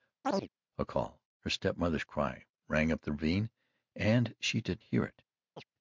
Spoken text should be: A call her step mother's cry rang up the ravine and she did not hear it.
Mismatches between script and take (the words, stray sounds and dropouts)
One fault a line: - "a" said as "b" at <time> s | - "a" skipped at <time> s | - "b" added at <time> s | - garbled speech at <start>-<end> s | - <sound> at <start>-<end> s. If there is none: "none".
- chirp at 0.2-0.5 s
- "not" skipped at 4.8 s
- chirp at 5.6-5.7 s